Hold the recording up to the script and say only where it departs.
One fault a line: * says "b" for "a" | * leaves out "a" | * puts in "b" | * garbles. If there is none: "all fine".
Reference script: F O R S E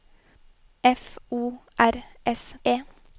all fine